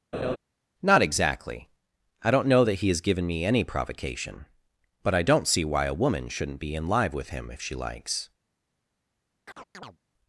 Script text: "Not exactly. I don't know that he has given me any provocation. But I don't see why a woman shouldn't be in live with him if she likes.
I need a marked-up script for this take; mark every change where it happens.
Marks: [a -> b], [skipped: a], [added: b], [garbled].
"Not exactly. I don't know that he has given me any provocation. But I don't see why a woman shouldn't be in live with him if she likes.